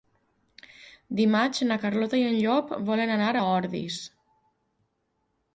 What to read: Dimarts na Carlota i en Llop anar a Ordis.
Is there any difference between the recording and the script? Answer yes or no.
yes